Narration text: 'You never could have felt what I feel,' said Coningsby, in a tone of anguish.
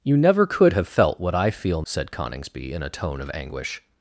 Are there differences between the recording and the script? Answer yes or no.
no